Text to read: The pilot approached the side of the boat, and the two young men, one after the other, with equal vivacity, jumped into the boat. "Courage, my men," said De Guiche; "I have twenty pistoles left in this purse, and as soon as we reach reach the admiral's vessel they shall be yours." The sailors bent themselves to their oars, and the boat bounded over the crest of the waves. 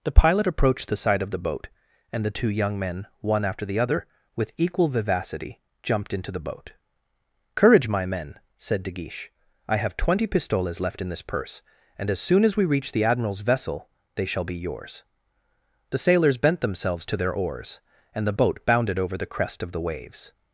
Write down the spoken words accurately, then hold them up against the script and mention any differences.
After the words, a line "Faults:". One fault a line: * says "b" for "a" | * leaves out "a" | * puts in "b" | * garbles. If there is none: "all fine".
The pilot approached the side of the boat, and the two young men, one after the other, with equal vivacity, jumped into the boat. "Courage, my men," said De Guiche; "I have twenty pistoles left in this purse, and as soon as we reach the admiral's vessel they shall be yours." The sailors bent themselves to their oars, and the boat bounded over the crest of the waves.
Faults:
* leaves out "reach"